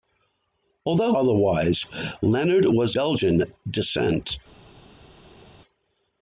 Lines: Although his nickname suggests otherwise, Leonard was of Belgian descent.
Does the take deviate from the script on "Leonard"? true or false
false